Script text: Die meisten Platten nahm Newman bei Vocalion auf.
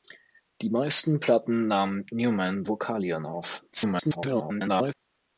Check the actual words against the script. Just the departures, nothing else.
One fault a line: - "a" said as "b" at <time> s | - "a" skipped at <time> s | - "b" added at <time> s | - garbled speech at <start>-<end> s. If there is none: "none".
- "bei" skipped at 2.6 s
- garbled speech at 3.7-4.9 s